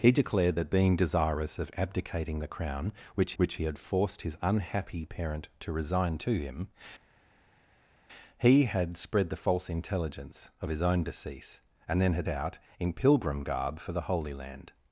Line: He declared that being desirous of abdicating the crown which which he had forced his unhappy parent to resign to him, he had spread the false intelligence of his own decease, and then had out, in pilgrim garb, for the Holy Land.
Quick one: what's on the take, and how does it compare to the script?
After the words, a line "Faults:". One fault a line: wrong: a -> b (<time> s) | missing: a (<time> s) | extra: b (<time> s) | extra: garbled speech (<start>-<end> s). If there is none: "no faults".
He declared that being desirous of abdicating the crown which which he had forced his unhappy parent to resign to him, he had spread the false intelligence of his own decease, and then had out, in pilgrim garb, for the Holy Land.
Faults:
no faults